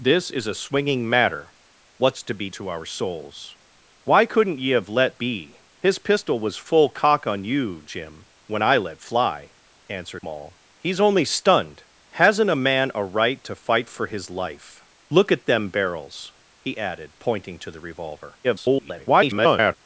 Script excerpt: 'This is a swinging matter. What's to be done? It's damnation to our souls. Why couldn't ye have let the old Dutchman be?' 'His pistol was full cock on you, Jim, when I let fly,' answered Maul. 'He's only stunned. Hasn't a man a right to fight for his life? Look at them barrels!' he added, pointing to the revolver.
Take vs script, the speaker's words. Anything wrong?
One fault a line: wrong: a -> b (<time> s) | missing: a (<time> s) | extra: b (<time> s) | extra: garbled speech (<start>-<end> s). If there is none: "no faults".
missing: done It's damnation (2.5 s)
missing: the old Dutchman (5.2 s)
extra: garbled speech (18.4-19.8 s)